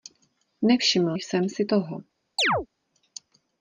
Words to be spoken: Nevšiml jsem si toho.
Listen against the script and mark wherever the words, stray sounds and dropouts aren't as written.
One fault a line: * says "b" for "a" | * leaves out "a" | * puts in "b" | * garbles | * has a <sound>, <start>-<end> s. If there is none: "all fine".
* has a chirp, 2.4-2.7 s